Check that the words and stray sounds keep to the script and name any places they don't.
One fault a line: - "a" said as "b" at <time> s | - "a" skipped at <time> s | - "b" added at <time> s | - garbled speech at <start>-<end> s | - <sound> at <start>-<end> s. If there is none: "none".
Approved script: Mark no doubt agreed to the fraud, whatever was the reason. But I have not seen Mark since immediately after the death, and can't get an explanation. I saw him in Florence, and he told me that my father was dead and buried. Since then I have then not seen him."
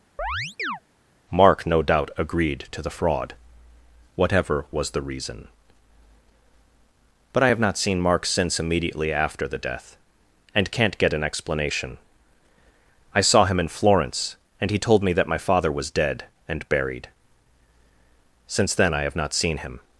- chirp at 0.2-0.8 s
- "then" skipped at 19.2 s